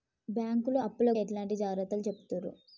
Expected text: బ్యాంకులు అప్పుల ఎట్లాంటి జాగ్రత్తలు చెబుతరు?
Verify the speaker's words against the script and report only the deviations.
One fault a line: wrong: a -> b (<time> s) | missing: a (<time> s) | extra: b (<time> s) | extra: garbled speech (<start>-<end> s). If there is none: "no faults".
no faults